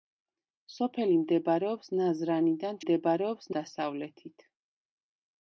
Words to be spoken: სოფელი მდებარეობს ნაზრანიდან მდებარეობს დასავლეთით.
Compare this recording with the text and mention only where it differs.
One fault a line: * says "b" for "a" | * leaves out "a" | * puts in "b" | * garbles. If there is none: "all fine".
all fine